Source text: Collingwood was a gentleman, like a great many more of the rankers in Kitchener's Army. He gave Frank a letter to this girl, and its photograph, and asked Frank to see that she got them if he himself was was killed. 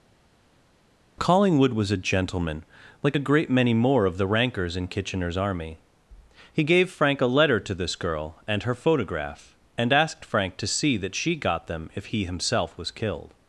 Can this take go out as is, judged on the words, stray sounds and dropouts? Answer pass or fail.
fail